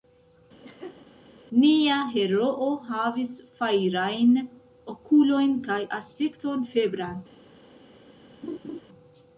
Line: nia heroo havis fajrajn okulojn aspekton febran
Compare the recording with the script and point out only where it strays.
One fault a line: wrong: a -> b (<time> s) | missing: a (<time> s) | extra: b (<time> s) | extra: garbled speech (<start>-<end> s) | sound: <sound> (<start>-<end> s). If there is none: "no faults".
sound: laugh (0.6-1.1 s)
extra: kaj (5.7 s)
sound: laugh (8.4-8.8 s)